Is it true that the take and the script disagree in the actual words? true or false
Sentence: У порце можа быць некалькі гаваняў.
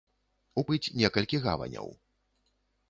true